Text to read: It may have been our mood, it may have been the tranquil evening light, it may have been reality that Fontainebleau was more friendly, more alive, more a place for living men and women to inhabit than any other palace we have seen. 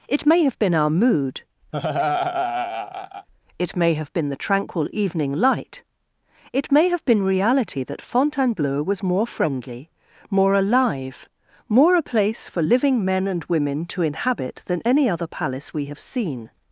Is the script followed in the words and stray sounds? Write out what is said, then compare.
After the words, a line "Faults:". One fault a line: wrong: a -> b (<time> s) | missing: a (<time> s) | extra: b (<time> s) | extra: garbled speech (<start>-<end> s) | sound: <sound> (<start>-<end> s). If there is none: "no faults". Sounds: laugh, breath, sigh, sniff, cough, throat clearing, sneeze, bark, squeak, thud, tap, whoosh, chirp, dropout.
It may have been our mood, it may have been the tranquil evening light, it may have been reality that Fontainebleau was more friendly, more alive, more a place for living men and women to inhabit than any other palace we have seen.
Faults:
sound: laugh (1.7-3.3 s)